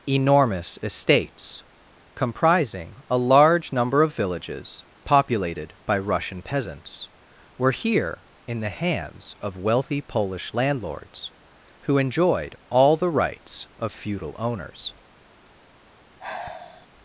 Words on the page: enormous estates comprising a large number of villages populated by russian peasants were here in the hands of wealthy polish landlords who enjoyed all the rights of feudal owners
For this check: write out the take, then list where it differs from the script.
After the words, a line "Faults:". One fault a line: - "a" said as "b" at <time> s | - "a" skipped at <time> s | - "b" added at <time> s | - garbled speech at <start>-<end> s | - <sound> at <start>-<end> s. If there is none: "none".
enormous estates comprising a large number of villages populated by russian peasants were here in the hands of wealthy polish landlords who enjoyed all the rights of feudal owners
Faults:
- sigh at 16.2-16.9 s